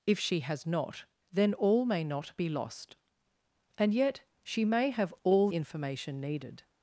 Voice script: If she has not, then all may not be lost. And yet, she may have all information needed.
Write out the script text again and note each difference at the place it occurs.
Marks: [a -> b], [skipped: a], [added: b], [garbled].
If she has not, then all may not be lost. And yet, she may have all information needed.